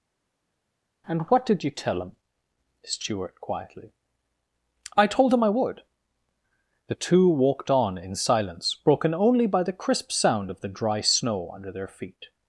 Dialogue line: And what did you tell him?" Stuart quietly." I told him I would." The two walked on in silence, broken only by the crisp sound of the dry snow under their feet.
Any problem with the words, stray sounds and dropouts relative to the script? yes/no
no